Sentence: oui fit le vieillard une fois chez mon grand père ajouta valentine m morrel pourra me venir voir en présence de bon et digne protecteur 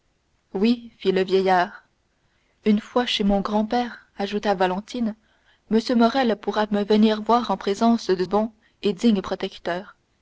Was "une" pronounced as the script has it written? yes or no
yes